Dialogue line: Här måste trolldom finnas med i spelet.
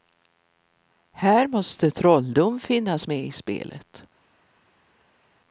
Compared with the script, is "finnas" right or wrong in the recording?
right